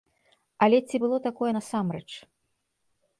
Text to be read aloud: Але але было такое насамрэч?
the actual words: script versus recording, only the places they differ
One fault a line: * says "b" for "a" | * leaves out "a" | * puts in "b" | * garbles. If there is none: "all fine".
* says "ці" for "але"